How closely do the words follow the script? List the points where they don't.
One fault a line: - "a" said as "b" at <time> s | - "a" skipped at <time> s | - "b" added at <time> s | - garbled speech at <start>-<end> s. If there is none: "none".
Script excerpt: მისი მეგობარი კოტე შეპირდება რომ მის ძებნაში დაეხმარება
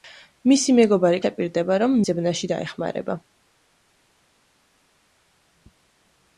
- "კოტე" skipped at 1.2 s
- "მის" skipped at 2.0 s